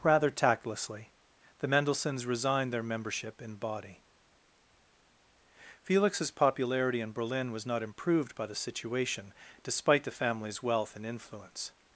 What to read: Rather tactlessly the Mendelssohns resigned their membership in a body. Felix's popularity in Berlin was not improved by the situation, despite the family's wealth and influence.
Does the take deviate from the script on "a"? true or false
true